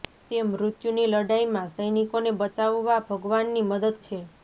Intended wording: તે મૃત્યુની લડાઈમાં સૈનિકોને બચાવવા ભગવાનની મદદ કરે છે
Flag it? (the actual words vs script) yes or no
yes